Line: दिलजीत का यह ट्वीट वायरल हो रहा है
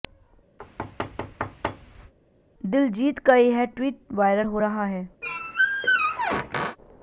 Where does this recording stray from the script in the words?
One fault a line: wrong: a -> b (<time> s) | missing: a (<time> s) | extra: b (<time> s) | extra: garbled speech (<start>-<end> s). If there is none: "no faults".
no faults